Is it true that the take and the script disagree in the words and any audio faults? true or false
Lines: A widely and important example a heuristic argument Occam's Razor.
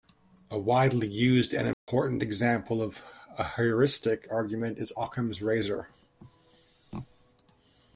true